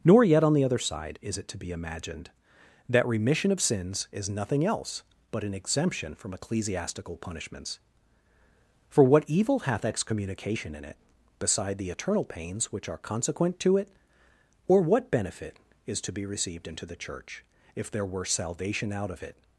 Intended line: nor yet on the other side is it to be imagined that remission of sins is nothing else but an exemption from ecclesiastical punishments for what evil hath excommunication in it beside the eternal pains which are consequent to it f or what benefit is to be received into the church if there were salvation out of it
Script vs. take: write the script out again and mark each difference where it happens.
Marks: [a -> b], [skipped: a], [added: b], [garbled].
nor yet on the other side is it to be imagined that remission of sins is nothing else but an exemption from ecclesiastical punishments for what evil hath excommunication in it beside the eternal pains which are consequent to it [skipped: f] or what benefit is to be received into the church if there were salvation out of it